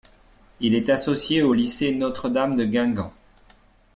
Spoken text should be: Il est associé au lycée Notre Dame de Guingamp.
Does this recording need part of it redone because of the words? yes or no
no